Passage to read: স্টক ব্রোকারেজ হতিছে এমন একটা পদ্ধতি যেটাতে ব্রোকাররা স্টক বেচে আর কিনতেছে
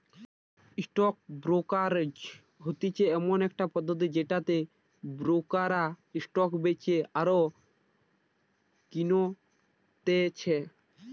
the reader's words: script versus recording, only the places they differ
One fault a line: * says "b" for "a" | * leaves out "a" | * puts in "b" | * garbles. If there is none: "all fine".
all fine